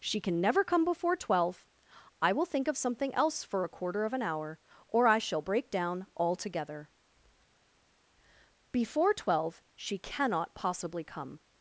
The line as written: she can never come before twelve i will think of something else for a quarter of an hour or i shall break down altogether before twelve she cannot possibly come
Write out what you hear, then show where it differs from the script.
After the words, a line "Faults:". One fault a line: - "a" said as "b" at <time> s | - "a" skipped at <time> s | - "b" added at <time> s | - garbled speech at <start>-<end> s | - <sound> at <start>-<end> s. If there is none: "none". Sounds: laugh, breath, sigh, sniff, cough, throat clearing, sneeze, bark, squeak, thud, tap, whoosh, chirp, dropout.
she can never come before twelve i will think of something else for a quarter of an hour or i shall break down altogether before twelve she cannot possibly come
Faults:
none